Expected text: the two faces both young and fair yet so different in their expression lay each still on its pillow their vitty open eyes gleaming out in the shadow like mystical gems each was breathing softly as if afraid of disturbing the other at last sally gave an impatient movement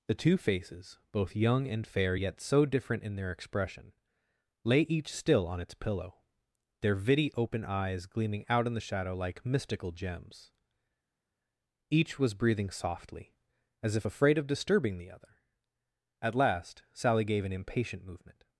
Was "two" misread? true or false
false